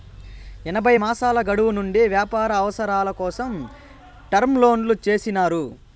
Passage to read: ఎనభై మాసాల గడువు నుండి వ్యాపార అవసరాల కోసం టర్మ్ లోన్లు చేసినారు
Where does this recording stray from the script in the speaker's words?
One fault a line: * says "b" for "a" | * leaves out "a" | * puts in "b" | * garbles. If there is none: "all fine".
all fine